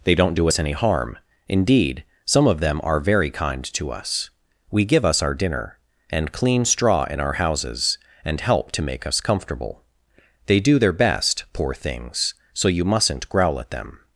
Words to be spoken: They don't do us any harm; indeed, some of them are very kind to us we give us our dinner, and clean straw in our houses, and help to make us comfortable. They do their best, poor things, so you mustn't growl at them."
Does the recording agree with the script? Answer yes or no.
yes